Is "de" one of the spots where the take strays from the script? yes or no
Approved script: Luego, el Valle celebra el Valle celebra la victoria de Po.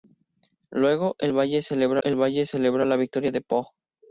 no